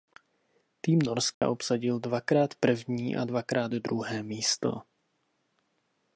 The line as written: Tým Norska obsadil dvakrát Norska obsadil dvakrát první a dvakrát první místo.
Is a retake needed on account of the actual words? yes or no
yes